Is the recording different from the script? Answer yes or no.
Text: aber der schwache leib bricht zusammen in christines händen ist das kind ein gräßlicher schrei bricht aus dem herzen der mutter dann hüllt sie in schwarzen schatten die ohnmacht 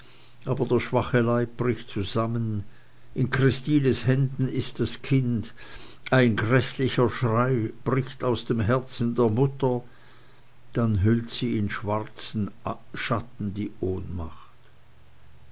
no